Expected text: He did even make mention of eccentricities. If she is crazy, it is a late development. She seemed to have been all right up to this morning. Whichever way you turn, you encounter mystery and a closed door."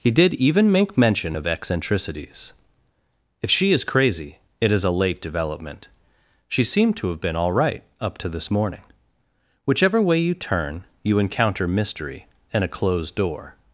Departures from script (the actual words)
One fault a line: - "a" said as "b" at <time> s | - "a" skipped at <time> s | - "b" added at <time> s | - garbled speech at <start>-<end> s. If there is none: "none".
none